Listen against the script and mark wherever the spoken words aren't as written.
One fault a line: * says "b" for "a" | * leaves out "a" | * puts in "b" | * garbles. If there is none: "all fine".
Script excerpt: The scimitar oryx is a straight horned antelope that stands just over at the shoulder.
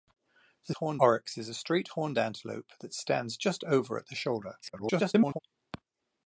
* says "horned" for "scimitar"
* garbles